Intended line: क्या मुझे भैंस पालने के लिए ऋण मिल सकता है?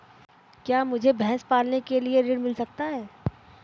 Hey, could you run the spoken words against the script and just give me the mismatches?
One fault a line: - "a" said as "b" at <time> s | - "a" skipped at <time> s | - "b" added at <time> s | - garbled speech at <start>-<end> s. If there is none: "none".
none